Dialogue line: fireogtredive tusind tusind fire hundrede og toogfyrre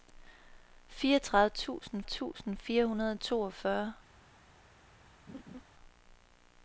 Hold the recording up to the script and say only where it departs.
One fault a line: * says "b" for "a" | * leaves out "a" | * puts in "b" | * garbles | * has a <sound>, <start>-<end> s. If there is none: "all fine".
* has a laugh, 5.3-5.6 s